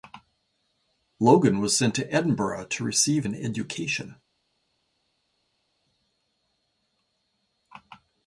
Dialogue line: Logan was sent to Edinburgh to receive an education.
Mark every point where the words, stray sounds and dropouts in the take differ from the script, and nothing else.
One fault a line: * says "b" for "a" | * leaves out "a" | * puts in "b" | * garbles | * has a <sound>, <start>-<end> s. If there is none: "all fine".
all fine